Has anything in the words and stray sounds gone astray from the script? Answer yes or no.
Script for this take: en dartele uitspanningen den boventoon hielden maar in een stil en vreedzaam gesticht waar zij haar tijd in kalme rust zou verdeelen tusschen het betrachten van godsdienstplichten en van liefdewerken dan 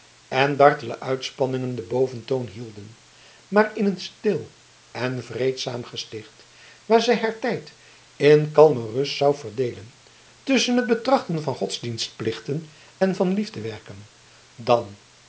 no